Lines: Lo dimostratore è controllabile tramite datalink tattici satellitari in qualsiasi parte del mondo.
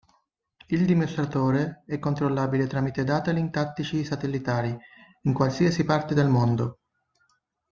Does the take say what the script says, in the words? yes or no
no